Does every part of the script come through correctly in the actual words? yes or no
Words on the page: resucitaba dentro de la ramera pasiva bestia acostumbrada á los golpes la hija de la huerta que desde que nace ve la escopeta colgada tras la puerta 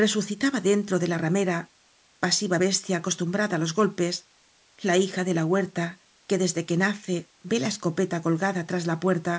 yes